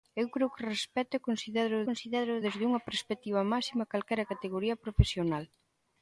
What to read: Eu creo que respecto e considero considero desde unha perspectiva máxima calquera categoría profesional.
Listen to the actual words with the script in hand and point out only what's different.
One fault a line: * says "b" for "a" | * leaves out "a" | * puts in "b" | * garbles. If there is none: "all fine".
all fine